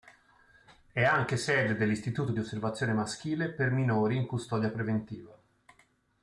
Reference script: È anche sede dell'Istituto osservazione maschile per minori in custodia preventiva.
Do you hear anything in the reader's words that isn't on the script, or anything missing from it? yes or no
yes